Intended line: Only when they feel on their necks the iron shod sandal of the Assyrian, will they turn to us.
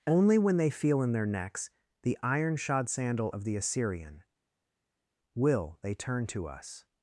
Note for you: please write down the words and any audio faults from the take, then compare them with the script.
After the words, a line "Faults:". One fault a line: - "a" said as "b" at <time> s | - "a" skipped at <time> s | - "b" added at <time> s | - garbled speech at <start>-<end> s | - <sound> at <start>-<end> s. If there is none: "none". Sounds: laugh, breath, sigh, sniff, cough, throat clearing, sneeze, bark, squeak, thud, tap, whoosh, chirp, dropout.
Only when they feel in their necks the iron shod sandal of the Assyrian, will they turn to us.
Faults:
- "on" said as "in" at 1.0 s